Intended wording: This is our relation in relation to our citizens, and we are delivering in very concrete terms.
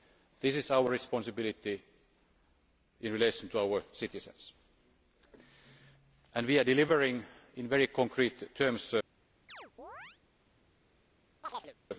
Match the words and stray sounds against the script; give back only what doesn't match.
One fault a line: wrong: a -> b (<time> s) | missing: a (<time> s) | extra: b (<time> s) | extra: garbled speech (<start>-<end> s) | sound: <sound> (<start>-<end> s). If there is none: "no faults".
wrong: relation -> responsibility (0.9 s)
sound: chirp (9.5-10.2 s)
sound: chirp (11.4-11.7 s)